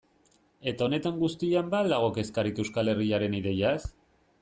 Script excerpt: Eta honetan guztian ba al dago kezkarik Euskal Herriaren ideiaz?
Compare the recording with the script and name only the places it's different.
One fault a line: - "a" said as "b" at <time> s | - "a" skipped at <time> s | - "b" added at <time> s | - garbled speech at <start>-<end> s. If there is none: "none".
none